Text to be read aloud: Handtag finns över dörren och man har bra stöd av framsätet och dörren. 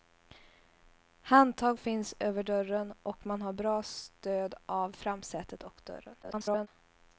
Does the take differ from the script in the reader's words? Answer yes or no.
yes